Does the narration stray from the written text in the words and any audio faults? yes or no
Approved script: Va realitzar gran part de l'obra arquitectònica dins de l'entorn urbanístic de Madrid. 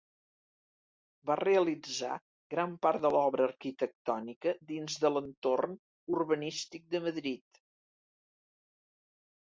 no